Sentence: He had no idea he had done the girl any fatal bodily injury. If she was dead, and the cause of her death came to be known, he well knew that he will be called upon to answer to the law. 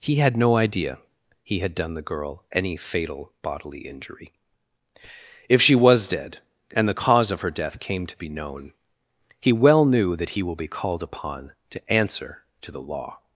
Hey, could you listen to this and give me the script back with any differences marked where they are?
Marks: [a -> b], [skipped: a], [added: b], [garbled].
He had no idea he had done the girl any fatal bodily injury. If she was dead, and the cause of her death came to be known, he well knew that he will be called upon to answer to the law.